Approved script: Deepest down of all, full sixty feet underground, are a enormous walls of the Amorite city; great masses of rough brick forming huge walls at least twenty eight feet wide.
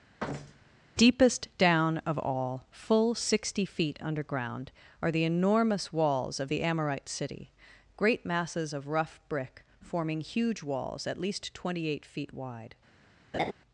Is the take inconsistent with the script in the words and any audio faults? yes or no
yes